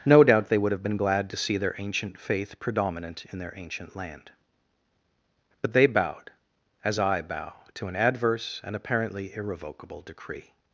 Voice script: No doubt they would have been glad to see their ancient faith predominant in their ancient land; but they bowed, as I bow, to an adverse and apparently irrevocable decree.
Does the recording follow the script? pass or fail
pass